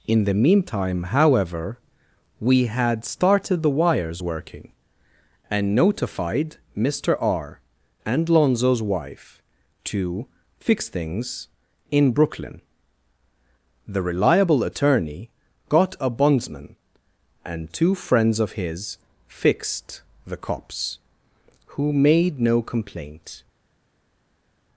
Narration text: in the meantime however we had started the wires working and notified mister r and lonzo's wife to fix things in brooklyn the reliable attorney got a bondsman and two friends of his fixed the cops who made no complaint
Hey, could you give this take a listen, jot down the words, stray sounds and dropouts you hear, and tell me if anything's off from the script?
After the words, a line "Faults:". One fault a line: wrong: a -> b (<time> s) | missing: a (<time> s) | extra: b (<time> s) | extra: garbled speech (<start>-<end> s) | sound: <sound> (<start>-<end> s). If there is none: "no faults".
in the meantime however we had started the wires working and notified mister r and lonzo's wife to fix things in brooklyn the reliable attorney got a bondsman and two friends of his fixed the cops who made no complaint
Faults:
no faults